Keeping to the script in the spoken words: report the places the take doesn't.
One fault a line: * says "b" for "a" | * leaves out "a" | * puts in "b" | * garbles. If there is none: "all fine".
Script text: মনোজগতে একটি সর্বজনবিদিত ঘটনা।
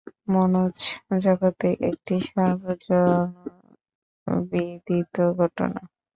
all fine